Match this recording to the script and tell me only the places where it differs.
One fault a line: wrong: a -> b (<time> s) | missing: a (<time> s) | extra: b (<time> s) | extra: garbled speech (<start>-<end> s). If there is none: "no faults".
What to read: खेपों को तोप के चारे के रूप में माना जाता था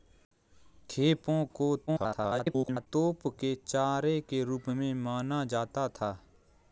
extra: garbled speech (1.9-2.9 s)